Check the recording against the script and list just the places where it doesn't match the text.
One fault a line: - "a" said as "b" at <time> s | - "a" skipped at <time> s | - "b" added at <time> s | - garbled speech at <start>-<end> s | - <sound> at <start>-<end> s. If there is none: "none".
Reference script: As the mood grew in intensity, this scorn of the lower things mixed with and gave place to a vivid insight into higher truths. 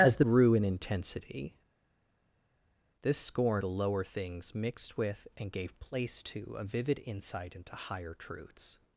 - "mood" skipped at 0.2 s
- "of" skipped at 3.6 s